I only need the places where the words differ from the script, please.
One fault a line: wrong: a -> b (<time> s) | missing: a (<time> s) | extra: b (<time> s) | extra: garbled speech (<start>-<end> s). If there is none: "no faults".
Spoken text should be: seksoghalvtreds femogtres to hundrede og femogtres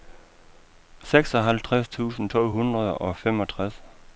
wrong: femogtres -> tusind (1.9 s)